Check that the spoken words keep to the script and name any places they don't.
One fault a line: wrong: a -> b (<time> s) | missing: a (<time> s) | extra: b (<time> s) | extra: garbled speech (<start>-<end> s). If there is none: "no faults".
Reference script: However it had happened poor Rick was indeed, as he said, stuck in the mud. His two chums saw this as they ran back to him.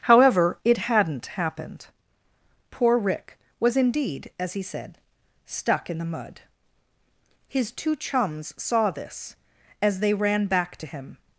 wrong: had -> hadn't (0.8 s)